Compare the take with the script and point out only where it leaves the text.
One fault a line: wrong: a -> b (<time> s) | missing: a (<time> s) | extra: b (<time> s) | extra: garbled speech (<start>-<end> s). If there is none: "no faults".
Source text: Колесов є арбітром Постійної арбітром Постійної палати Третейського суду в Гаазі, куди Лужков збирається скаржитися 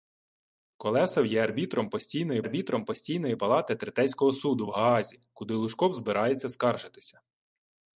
no faults